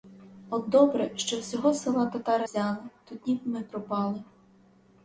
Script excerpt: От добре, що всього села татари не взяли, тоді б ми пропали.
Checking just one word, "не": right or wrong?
wrong